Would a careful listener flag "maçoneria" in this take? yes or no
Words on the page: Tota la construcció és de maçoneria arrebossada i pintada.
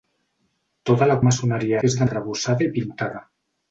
yes